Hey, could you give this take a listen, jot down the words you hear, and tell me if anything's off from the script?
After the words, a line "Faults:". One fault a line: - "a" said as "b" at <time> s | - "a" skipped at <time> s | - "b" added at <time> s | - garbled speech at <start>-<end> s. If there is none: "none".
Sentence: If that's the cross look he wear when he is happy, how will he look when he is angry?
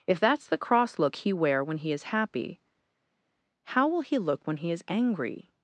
If that's the cross look he wear when he is happy, how will he look when he is angry?
Faults:
none